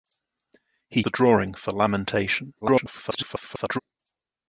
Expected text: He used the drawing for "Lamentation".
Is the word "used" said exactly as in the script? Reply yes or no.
no